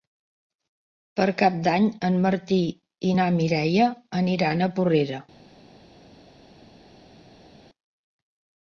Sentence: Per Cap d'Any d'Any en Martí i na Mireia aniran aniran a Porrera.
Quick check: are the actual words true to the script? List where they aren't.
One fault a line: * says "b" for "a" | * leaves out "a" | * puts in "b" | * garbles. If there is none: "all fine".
* leaves out "d'Any"
* leaves out "aniran"